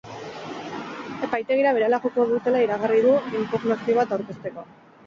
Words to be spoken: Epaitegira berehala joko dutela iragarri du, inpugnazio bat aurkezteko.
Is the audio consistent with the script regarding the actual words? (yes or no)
yes